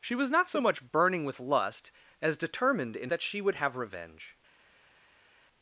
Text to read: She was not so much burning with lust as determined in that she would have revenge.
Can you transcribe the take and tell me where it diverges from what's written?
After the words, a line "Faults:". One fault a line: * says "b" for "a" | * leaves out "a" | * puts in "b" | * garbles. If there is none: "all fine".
She was not so much burning with lust as determined in that she would have revenge.
Faults:
all fine